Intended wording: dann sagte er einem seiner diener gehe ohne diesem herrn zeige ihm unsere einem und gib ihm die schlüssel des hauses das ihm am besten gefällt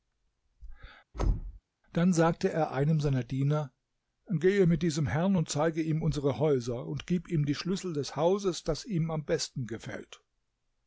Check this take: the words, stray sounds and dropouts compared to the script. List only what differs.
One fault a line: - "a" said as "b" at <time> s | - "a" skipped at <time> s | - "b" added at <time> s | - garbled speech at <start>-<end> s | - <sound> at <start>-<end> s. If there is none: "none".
- thud at 1.1-1.6 s
- "ohne" said as "mit" at 4.7 s
- "und" added at 5.3 s
- "einem" said as "häuser" at 6.4 s